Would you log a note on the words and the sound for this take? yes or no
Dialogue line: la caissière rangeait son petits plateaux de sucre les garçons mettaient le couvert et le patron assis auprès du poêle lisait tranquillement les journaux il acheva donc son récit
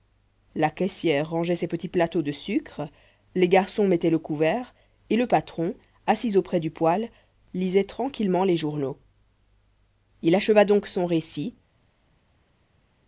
yes